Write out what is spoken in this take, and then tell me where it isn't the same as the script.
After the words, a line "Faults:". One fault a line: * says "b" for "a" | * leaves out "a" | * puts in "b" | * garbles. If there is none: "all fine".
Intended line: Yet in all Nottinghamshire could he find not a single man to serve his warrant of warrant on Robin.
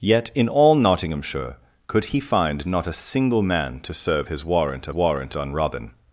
Yet in all Nottinghamshire could he find not a single man to serve his warrant of warrant on Robin.
Faults:
all fine